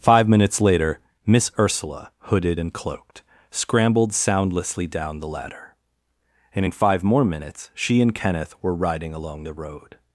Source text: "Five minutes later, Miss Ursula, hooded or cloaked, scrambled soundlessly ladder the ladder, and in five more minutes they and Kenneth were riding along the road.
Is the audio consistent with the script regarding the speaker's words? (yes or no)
no